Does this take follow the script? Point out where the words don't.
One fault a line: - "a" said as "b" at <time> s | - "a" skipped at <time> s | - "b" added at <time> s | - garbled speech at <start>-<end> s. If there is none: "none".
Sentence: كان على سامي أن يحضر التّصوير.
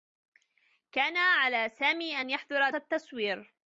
none